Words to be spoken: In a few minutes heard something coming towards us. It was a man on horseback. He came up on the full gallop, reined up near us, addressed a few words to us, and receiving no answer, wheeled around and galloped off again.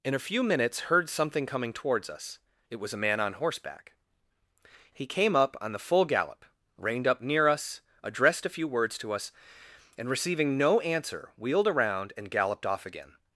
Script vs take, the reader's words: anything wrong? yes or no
no